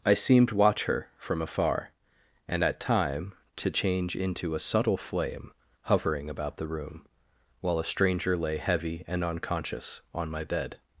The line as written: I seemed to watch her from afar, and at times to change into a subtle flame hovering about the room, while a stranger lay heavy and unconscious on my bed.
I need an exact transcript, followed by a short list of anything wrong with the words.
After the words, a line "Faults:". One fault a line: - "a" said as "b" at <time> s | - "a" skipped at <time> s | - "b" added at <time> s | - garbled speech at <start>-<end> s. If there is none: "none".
I seemed watch her from afar, and at time to change into a subtle flame hovering about the room, while a stranger lay heavy and unconscious on my bed.
Faults:
- "to" skipped at 0.5 s
- "times" said as "time" at 2.8 s